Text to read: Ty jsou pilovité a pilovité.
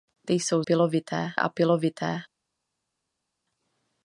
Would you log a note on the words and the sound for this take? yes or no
no